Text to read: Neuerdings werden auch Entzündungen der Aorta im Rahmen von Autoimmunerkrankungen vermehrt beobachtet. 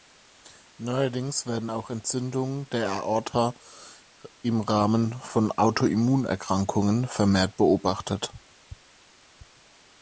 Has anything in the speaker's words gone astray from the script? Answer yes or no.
no